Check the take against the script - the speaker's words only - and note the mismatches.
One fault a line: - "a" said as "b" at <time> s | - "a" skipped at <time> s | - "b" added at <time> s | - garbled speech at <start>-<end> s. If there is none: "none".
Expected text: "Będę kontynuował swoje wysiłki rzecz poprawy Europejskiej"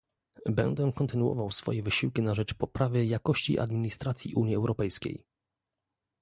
- "na" added at 2.2 s
- "jakości administracji Unii" added at 3.0 s